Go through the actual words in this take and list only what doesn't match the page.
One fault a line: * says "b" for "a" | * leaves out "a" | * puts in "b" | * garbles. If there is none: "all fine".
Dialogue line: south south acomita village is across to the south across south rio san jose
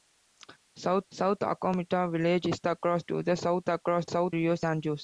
all fine